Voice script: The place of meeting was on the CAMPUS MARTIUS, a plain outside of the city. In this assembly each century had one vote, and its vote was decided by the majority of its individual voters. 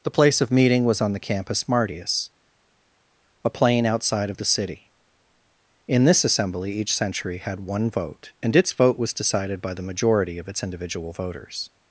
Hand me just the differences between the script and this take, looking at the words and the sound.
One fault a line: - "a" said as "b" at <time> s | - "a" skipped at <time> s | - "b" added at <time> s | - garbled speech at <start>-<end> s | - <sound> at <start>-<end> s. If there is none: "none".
none